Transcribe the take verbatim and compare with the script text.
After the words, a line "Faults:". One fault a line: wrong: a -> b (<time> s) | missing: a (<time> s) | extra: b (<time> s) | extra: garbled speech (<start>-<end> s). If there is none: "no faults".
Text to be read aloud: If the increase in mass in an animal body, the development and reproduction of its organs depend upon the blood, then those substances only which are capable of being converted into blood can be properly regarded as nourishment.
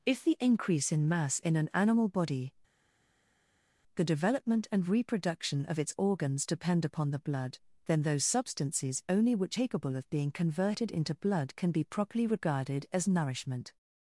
If the increase in mass in an animal body, the development and reproduction of its organs depend upon the blood, then those substances only which capable of being converted into blood can be properly regarded as nourishment.
Faults:
missing: are (9.6 s)